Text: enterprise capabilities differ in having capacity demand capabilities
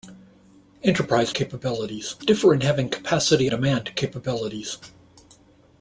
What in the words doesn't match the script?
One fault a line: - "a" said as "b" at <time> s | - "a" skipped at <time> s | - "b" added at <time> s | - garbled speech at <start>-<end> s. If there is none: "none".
none